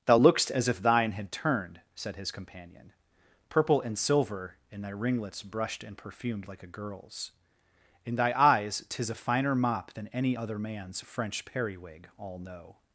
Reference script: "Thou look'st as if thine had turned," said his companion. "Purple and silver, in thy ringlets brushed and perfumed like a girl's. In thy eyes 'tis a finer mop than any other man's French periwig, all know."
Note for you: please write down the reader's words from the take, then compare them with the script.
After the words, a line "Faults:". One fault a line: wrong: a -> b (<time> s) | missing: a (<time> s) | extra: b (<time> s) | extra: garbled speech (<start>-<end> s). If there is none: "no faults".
"Thou look'st as if thine had turned," said his companion. "Purple and silver, in thy ringlets brushed and perfumed like a girl's. In thy eyes 'tis a finer mop than any other man's French periwig, all know."
Faults:
no faults